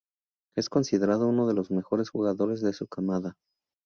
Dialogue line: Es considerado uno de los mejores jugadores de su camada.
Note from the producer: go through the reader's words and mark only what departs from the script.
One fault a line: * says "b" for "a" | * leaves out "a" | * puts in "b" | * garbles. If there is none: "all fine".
all fine